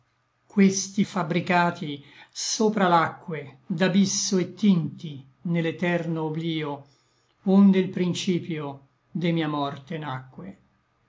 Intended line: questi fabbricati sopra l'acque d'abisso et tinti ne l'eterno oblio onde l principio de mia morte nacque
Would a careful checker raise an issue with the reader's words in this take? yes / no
no